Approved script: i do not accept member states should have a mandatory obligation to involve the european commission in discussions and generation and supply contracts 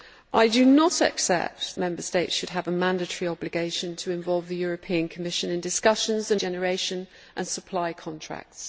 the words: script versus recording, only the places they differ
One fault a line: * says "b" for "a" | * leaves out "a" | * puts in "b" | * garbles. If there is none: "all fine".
all fine